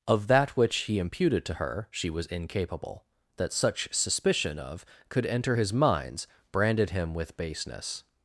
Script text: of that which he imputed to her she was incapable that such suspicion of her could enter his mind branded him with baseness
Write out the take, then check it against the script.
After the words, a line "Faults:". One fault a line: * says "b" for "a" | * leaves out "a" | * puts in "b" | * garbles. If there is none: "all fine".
of that which he imputed to her she was incapable that such suspicion of could enter his minds branded him with baseness
Faults:
* leaves out "her"
* says "minds" for "mind"